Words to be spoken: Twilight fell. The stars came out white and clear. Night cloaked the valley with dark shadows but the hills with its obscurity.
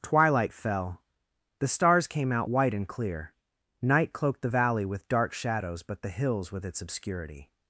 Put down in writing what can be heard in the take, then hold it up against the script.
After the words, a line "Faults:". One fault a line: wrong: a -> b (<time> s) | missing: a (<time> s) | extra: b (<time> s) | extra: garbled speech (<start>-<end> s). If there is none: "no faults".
Twilight fell. The stars came out white and clear. Night cloaked the valley with dark shadows but the hills with its obscurity.
Faults:
no faults